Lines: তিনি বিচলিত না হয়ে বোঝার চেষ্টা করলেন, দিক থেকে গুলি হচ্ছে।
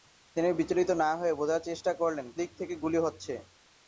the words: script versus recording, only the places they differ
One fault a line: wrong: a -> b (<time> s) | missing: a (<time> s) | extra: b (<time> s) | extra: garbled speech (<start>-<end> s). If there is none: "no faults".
no faults